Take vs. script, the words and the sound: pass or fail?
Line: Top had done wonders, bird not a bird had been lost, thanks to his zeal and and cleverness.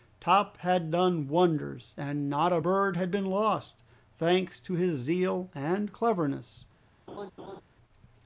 fail